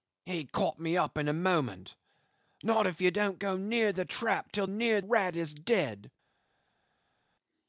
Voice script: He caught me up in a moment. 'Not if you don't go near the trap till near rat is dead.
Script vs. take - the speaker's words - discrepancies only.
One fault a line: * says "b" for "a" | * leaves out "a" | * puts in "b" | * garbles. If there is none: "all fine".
all fine